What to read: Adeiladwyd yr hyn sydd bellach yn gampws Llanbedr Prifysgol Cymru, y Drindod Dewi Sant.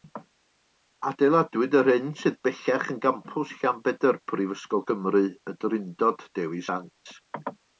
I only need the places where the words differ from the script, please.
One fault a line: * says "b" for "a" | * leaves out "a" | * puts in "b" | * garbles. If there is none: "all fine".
all fine